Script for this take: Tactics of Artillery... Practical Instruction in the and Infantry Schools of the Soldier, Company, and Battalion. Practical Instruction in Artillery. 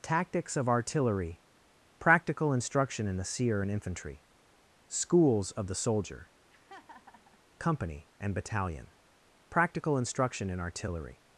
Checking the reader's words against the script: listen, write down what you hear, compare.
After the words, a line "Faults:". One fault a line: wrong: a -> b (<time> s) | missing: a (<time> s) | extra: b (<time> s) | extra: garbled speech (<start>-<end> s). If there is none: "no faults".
Tactics of Artillery... Practical Instruction in the seer and Infantry Schools of the Soldier, Company, and Battalion. Practical Instruction in Artillery.
Faults:
extra: seer (3.2 s)